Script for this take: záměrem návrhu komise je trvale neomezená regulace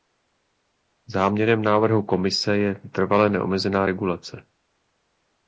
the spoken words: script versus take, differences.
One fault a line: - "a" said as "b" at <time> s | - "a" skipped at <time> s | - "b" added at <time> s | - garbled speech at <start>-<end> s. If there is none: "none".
none